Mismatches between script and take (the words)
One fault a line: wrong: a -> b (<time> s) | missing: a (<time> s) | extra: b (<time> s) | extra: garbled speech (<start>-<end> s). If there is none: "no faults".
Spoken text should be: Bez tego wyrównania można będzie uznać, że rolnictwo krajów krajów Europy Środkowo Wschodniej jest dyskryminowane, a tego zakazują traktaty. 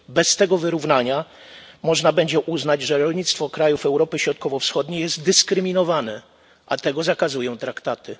missing: krajów (3.9 s)